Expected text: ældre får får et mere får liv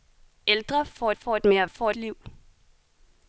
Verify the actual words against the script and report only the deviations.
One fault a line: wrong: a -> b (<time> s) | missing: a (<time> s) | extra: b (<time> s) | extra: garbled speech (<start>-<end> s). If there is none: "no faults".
no faults